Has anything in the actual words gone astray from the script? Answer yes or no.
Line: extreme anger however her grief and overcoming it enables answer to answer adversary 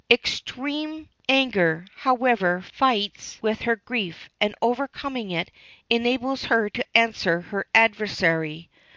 yes